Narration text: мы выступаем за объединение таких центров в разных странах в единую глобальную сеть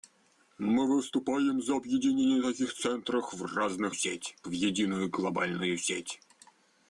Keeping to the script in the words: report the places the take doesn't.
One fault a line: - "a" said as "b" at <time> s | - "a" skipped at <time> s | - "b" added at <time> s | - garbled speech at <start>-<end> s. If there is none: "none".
- "странах" said as "сеть" at 3.9 s